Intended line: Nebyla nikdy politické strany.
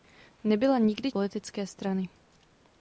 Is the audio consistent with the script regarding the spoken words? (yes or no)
yes